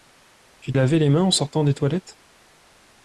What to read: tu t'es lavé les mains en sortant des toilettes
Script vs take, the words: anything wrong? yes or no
yes